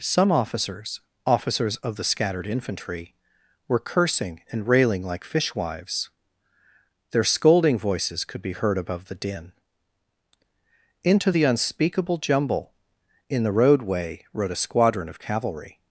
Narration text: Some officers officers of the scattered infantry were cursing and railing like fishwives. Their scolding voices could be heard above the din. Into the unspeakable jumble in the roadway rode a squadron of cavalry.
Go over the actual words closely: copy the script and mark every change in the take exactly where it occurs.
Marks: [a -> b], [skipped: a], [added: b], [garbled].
Some officers officers of the scattered infantry were cursing and railing like fishwives. Their scolding voices could be heard above the din. Into the unspeakable jumble in the roadway rode a squadron of cavalry.